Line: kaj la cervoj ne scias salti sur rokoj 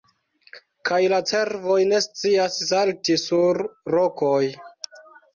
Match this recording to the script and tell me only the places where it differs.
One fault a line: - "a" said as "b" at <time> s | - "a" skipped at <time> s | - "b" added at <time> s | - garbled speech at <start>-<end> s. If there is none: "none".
none